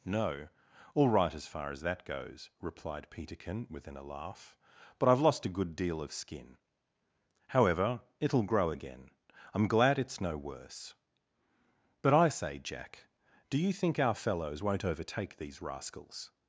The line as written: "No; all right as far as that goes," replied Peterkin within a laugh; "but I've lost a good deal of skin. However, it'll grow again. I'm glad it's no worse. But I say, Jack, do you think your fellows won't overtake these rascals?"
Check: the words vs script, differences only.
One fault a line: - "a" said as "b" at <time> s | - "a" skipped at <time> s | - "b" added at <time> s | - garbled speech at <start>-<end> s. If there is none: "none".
- "your" said as "our" at 14.0 s